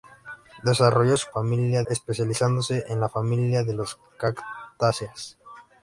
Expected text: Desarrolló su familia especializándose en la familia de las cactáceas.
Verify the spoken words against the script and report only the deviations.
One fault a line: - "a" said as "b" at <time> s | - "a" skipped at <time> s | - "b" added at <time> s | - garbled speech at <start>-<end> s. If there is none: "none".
none